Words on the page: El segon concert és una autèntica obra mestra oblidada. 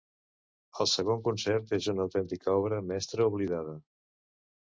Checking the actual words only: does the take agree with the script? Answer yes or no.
yes